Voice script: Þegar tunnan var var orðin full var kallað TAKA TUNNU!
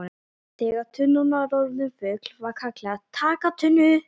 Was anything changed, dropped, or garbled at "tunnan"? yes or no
no